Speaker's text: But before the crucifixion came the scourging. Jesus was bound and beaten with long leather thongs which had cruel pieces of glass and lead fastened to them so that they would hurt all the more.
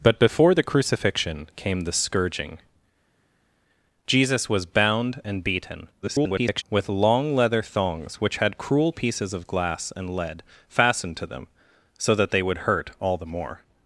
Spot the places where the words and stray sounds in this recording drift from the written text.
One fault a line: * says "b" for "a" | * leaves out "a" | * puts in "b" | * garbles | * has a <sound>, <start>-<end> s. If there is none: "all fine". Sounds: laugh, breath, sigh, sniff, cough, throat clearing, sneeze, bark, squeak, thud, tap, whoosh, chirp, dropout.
* garbles